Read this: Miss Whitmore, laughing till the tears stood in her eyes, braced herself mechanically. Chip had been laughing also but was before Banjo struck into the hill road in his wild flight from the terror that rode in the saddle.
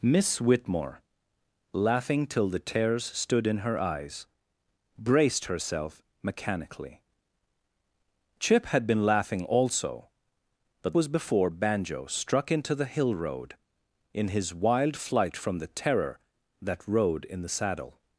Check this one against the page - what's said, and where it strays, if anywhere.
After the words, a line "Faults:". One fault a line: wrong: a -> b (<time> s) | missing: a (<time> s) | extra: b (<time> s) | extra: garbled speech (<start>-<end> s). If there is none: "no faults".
Miss Whitmore, laughing till the tears stood in her eyes, braced herself mechanically. Chip had been laughing also but was before Banjo struck into the hill road in his wild flight from the terror that rode in the saddle.
Faults:
no faults